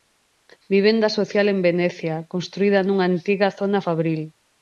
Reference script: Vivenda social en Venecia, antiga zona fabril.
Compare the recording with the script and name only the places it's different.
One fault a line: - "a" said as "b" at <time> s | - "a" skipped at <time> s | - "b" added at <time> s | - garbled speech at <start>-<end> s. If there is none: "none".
- "construída nunha" added at 2.3 s